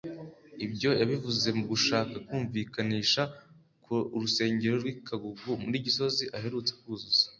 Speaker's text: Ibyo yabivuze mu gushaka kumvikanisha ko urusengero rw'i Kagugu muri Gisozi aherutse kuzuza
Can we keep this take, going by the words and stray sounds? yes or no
yes